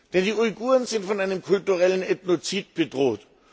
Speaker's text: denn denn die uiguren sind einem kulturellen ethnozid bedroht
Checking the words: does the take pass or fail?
fail